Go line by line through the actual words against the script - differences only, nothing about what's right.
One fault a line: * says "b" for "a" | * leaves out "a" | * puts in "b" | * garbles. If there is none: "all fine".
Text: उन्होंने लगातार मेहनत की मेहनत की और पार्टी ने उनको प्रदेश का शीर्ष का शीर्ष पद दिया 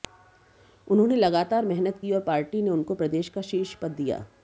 * leaves out "मेहनत की"
* leaves out "का शीर्ष"